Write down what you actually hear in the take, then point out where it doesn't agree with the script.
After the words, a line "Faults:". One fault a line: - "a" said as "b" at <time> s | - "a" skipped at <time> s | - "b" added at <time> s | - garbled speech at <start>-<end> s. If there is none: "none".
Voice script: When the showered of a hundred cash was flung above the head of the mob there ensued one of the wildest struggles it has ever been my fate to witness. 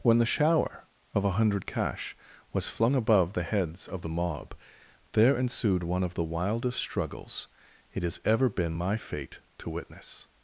When the shower of a hundred cash was flung above the heads of the mob there ensued one of the wildest struggles it has ever been my fate to witness.
Faults:
- "showered" said as "shower" at 0.2 s
- "head" said as "heads" at 3.4 s